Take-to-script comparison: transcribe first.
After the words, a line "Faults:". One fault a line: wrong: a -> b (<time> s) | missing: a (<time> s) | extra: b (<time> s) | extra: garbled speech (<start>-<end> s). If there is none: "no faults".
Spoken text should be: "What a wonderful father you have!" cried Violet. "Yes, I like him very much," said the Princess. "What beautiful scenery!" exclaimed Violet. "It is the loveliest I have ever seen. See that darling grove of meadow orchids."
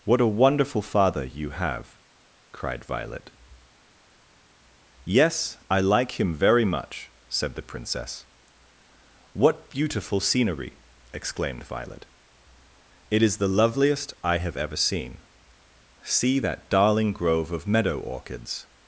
"What a wonderful father you have!" cried Violet. "Yes, I like him very much," said the Princess. "What beautiful scenery!" exclaimed Violet. "It is the loveliest I have ever seen. See that darling grove of meadow orchids."
Faults:
no faults